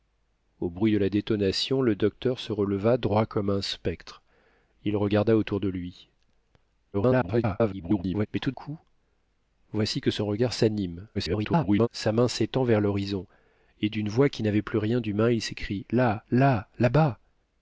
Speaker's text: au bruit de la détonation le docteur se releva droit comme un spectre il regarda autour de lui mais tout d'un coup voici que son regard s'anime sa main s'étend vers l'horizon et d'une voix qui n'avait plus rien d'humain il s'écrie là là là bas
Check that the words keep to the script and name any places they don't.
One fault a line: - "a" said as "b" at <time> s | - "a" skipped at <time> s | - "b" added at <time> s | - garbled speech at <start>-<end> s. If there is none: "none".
- garbled speech at 6.9-8.3 s
- "d'un" skipped at 8.5 s
- garbled speech at 11.1-11.9 s